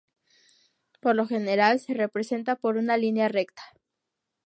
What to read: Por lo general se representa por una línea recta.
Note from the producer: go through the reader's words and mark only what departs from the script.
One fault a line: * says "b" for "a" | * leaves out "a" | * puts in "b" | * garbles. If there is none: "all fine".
all fine